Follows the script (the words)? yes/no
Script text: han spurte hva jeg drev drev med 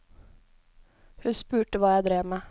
no